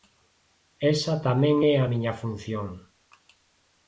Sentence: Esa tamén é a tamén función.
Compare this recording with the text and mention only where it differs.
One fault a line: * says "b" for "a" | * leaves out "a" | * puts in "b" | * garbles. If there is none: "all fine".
* says "miña" for "tamén"